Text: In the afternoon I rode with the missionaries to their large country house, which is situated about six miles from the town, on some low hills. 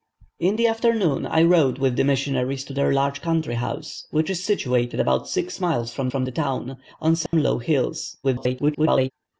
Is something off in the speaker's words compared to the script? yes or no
yes